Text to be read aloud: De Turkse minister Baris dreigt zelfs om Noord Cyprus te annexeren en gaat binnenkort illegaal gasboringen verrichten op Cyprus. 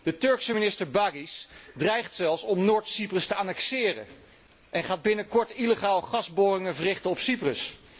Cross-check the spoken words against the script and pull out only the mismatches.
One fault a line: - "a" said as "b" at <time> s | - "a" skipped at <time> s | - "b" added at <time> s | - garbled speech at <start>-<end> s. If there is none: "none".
none